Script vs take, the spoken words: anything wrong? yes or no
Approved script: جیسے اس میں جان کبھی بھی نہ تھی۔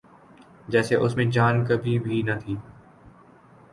no